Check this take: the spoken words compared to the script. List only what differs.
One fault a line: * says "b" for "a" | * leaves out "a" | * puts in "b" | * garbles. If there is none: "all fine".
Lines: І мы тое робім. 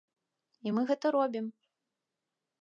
* says "гэта" for "тое"